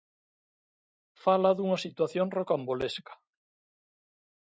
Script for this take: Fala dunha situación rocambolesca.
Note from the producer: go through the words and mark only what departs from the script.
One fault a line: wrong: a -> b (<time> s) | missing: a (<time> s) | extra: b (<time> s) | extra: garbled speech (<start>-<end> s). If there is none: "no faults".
no faults